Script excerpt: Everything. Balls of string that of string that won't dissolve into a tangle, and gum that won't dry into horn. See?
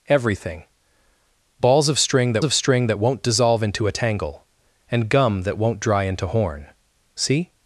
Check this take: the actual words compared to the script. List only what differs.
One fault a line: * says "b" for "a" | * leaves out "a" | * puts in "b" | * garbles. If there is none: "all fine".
all fine